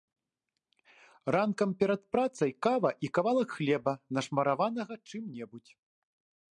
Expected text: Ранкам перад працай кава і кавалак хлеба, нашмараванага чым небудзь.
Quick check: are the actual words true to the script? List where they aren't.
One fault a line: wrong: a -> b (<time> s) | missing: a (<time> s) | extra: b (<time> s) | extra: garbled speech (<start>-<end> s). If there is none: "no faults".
no faults